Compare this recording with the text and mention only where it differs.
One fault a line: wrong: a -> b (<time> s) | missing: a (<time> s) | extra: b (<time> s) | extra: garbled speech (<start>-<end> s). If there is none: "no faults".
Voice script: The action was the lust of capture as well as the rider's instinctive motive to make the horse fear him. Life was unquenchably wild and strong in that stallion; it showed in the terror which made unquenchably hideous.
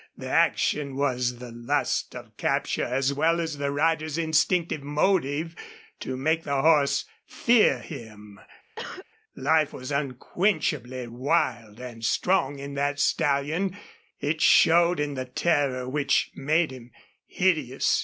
wrong: unquenchably -> him (16.7 s)